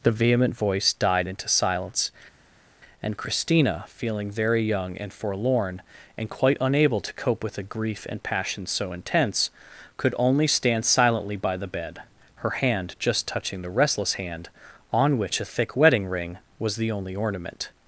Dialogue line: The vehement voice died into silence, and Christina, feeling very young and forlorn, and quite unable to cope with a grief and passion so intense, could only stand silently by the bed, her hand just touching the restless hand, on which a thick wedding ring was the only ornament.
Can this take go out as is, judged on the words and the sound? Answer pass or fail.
pass